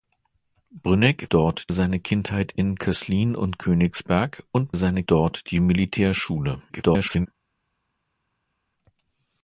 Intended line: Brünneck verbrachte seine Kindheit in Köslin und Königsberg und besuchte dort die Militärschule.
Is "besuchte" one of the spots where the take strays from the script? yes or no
yes